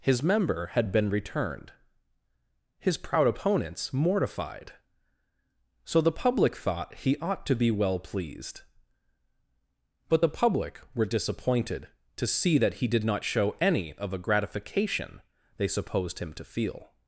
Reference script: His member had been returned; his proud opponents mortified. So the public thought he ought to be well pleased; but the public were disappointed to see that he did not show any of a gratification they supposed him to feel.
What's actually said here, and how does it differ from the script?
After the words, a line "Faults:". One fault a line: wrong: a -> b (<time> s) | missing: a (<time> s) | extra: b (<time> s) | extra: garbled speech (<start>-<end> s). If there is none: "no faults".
His member had been returned; his proud opponents mortified. So the public thought he ought to be well pleased; but the public were disappointed to see that he did not show any of a gratification they supposed him to feel.
Faults:
no faults